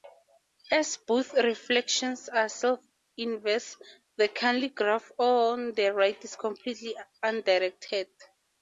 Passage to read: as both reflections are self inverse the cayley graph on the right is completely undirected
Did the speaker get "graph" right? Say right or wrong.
right